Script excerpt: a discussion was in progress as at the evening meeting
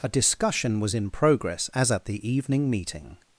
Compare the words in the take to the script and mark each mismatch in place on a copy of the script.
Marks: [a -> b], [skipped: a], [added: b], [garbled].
a discussion was in progress as at the evening meeting